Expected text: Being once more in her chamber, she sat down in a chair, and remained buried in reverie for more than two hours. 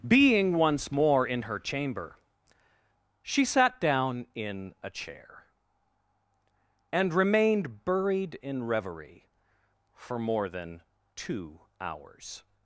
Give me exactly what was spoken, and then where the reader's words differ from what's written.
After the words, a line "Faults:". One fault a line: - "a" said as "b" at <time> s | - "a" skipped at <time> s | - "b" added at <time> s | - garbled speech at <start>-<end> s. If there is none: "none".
Being once more in her chamber, she sat down in a chair, and remained buried in reverie for more than two hours.
Faults:
none